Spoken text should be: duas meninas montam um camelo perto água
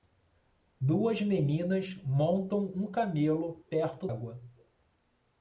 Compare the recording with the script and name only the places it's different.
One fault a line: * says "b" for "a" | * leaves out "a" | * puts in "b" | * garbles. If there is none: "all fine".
all fine